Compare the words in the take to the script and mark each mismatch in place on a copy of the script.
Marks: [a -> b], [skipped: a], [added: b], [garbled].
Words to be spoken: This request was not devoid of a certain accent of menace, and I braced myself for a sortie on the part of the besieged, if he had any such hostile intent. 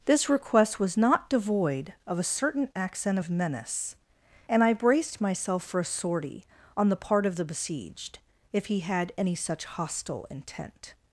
This request was not devoid of a certain accent of menace, and I braced myself for a sortie on the part of the besieged, if he had any such hostile intent.